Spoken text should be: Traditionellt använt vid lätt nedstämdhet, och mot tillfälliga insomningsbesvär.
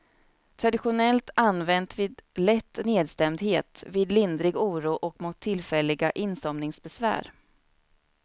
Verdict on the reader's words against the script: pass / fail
fail